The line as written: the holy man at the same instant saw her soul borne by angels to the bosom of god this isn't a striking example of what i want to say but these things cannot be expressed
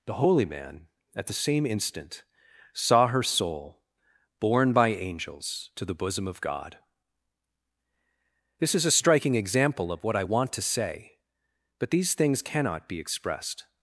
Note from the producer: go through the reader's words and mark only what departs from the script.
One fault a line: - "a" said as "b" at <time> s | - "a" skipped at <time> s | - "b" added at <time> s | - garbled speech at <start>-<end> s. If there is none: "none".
- "isn't" said as "is" at 8.7 s